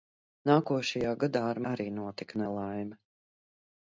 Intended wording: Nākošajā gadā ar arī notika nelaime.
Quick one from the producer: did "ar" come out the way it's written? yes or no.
yes